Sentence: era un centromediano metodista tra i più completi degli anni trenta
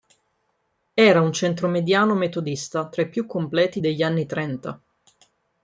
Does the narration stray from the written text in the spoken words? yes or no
no